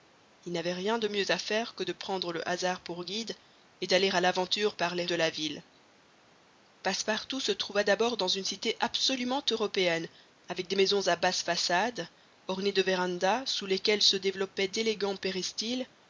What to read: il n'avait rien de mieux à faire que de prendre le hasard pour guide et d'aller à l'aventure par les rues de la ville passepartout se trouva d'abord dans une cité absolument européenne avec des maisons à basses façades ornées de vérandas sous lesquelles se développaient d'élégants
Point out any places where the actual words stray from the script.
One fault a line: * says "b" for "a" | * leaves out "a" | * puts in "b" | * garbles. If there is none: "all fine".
* leaves out "rues"